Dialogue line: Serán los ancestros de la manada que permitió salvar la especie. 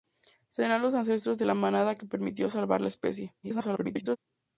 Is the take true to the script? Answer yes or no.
no